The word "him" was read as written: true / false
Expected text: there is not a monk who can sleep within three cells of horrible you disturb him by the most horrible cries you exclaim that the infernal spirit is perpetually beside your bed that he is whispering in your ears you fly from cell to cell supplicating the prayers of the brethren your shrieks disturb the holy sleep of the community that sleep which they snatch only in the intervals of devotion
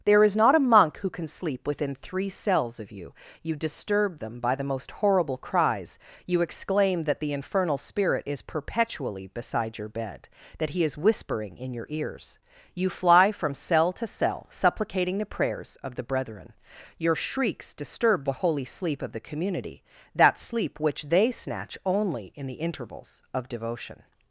false